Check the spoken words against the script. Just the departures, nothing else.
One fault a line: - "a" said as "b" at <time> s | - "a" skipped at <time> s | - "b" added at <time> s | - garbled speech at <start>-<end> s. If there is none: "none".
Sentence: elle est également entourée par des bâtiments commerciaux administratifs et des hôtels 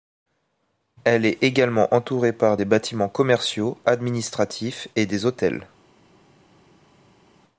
none